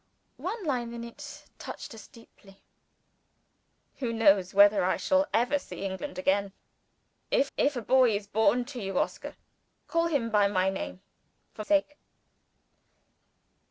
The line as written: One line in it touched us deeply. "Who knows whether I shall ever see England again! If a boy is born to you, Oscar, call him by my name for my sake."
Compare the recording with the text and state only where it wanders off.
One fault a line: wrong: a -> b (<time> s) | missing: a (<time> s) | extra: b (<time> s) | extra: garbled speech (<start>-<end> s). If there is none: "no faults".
extra: if (7.6 s)
missing: my (11.6 s)